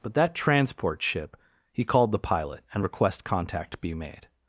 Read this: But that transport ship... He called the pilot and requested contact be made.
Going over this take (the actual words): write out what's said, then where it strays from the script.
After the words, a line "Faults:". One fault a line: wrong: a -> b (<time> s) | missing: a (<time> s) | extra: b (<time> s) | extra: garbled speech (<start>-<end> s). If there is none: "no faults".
But that transport ship... He called the pilot and request contact be made.
Faults:
wrong: requested -> request (2.8 s)